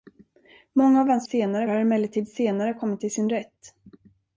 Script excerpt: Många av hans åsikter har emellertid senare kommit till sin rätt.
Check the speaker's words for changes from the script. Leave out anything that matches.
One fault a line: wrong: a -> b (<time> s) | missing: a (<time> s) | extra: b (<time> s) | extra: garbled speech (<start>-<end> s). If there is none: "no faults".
wrong: åsikter -> senare (1.2 s)